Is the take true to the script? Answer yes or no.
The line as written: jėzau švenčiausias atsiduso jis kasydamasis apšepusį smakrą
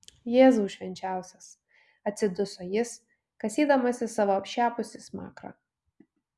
no